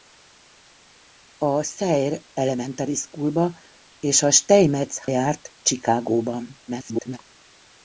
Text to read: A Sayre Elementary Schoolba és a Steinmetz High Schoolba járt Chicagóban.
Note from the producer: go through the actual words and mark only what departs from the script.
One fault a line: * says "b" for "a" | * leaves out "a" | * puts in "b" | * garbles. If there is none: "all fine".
* leaves out "High Schoolba"
* garbles